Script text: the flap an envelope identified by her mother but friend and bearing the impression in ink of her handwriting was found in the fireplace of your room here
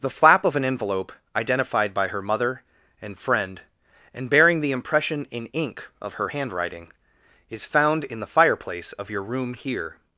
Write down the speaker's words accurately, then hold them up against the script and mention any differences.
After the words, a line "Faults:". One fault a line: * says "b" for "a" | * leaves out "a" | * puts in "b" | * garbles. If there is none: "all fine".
the flap of an envelope identified by her mother and friend and bearing the impression in ink of her handwriting is found in the fireplace of your room here
Faults:
* puts in "of"
* says "and" for "but"
* says "is" for "was"